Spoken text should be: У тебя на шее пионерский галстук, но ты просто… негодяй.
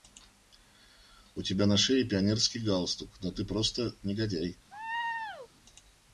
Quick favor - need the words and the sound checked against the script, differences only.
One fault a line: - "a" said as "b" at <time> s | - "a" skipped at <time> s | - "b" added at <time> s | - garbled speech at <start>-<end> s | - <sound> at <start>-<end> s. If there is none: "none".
- laugh at 4.7-5.5 s